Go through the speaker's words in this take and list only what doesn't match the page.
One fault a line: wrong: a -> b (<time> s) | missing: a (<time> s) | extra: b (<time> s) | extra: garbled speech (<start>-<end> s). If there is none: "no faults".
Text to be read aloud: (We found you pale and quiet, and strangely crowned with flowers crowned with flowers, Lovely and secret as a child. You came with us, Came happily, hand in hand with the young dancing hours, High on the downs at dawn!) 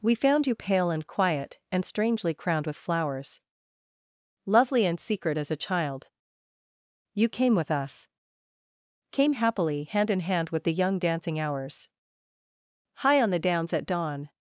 missing: crowned with flowers (3.4 s)